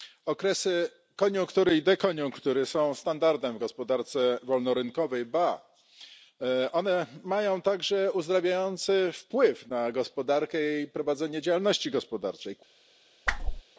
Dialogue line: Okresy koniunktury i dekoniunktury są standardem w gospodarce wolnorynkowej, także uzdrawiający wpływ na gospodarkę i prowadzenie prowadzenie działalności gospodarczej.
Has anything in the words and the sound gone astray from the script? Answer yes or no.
yes